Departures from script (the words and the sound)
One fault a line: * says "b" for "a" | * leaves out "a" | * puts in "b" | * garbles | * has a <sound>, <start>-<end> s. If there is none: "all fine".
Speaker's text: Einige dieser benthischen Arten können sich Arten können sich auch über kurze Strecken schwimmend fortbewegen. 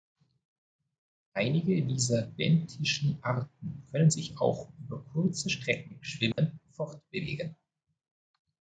* leaves out "Arten können sich"
* has a dropout, 6.3-6.4 s